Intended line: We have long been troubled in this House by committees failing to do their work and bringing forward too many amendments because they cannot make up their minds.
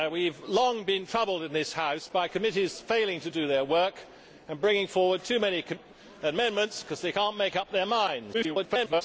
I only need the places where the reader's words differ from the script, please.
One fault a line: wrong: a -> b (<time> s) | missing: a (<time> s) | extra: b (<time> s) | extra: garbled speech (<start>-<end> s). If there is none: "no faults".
extra: garbled speech (8.3-9.0 s)